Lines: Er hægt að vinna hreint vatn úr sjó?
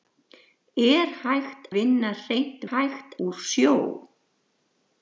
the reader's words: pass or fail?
fail